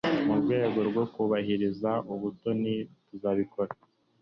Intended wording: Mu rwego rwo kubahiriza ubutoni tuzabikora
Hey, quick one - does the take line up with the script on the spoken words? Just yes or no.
yes